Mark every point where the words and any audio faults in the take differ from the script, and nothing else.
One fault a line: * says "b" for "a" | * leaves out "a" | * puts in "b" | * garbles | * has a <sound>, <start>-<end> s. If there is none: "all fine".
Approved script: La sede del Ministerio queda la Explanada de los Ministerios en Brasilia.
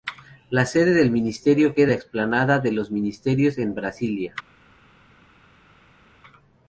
all fine